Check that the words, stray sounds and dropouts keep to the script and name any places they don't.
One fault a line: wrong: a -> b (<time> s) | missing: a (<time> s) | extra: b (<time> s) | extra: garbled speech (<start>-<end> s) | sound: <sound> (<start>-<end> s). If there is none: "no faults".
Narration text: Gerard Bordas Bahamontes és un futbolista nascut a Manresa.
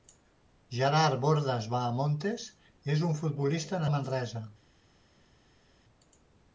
missing: nascut (3.8 s)